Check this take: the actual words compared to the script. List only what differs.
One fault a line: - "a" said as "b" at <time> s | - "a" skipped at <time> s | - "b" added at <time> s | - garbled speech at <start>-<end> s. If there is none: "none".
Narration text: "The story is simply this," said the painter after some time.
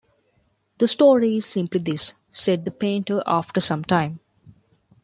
none